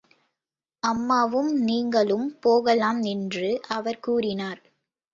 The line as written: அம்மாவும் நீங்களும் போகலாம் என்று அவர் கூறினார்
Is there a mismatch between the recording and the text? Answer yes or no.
no